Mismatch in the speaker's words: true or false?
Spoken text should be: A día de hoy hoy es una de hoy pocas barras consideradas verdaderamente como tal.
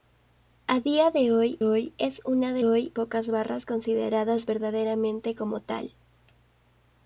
false